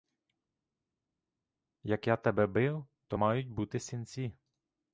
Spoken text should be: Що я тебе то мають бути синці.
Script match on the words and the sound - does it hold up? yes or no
no